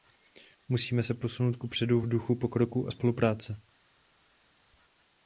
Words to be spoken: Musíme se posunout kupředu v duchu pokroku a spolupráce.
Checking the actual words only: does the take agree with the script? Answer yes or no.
yes